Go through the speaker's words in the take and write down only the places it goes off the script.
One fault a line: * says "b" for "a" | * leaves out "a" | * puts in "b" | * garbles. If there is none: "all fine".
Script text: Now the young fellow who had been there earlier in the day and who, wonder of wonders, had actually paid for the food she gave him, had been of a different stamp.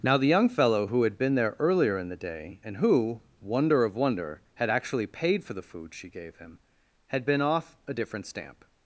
* says "wonder" for "wonders"
* says "off" for "of"